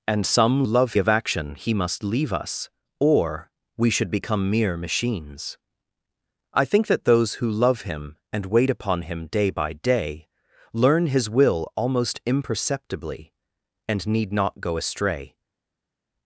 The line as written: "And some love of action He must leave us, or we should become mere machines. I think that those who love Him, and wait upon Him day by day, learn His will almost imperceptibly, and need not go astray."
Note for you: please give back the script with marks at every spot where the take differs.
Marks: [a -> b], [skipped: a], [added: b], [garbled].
"And some love of action He must leave us, or we should become mere machines. I think that those who love Him, and wait upon Him day by day, learn His will almost imperceptibly, and need not go astray."